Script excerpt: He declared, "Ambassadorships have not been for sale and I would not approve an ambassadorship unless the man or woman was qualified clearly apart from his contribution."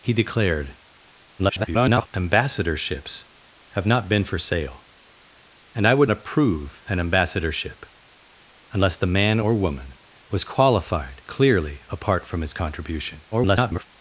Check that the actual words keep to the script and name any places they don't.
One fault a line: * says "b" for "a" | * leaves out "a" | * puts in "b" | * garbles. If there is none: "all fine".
* garbles
* leaves out "not"
* garbles